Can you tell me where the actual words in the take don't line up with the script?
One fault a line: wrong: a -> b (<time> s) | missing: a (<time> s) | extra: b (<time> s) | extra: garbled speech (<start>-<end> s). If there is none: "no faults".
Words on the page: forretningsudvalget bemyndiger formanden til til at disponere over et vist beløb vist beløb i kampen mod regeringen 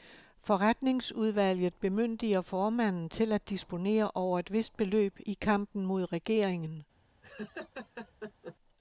missing: til (3.3 s)
missing: vist beløb (5.2 s)